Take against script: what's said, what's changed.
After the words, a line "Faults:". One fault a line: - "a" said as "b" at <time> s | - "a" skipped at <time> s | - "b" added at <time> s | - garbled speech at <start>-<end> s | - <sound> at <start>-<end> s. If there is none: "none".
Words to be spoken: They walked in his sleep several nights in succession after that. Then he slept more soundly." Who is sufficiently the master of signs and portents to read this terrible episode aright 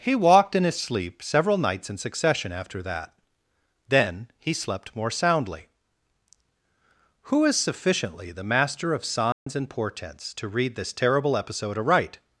He walked in his sleep several nights in succession after that. Then he slept more soundly." Who is sufficiently the master of signs and portents to read this terrible episode aright
Faults:
- "They" said as "He" at 0.0 s
- dropout at 9.3-9.5 s